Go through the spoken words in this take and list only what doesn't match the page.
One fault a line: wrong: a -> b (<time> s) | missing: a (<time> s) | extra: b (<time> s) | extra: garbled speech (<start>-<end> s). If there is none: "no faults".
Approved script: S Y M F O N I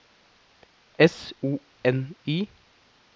missing: Y M F (1.4 s)